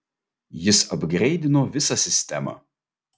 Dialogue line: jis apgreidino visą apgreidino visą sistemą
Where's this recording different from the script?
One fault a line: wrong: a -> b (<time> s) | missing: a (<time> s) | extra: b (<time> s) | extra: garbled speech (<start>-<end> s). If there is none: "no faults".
missing: apgreidino visą (2.0 s)